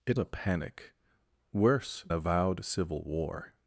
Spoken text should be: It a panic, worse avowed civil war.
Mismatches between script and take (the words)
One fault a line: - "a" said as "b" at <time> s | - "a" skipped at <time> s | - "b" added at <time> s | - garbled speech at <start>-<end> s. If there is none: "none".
none